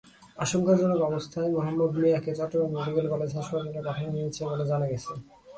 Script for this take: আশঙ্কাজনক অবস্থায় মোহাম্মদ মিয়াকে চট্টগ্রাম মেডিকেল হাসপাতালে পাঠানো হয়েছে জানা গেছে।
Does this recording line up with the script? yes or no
no